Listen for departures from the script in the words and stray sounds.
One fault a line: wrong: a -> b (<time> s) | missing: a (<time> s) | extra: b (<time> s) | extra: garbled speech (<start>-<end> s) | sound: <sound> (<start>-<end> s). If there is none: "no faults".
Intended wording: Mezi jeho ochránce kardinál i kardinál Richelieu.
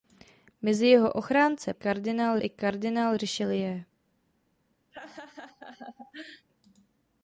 sound: laugh (4.9-6.5 s)